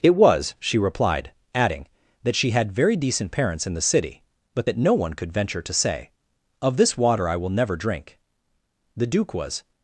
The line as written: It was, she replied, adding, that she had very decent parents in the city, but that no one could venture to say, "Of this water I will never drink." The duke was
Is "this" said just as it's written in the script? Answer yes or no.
yes